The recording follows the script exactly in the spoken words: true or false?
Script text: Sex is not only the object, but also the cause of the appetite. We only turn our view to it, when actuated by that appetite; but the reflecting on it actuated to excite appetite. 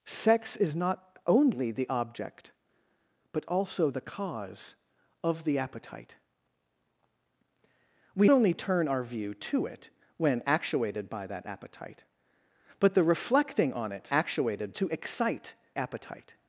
true